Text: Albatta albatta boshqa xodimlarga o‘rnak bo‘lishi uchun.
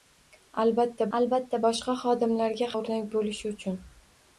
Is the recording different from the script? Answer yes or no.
no